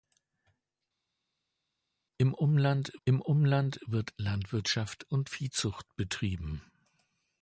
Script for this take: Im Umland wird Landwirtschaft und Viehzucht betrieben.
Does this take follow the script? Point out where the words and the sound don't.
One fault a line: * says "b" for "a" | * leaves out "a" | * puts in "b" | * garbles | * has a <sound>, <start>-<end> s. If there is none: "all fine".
* puts in "im Umland"